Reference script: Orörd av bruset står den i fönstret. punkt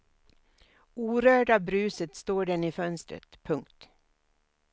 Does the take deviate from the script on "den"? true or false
false